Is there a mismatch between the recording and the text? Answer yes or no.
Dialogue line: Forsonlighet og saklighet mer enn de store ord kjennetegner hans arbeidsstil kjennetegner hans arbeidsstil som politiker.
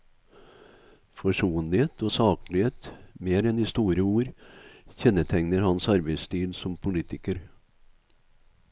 yes